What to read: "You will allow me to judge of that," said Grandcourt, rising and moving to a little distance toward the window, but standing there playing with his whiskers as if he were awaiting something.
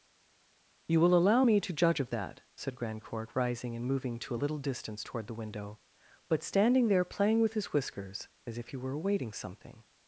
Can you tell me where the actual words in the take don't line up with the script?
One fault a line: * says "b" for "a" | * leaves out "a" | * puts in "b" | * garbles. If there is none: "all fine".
all fine